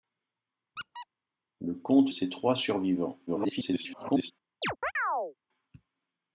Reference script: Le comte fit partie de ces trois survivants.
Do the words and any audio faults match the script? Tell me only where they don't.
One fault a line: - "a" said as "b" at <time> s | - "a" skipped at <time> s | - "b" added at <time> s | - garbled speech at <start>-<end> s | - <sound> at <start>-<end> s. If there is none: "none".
- squeak at 0.8-1.1 s
- "fit partie de" skipped at 2.1 s
- garbled speech at 3.3-4.3 s
- chirp at 4.6-5.3 s